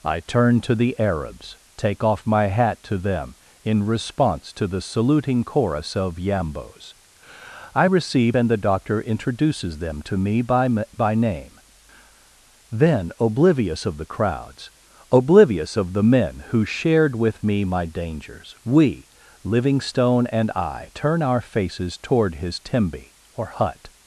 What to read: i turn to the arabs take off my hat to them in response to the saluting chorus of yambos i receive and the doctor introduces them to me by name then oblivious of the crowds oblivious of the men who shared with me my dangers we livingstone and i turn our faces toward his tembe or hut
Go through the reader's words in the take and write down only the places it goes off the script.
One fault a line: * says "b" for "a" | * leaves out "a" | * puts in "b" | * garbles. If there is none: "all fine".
* puts in "by"